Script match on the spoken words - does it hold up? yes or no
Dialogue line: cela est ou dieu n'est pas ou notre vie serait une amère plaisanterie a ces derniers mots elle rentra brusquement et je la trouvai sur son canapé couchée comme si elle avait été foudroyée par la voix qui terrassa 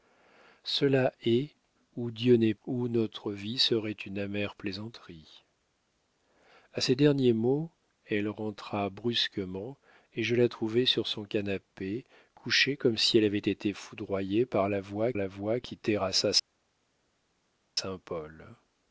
no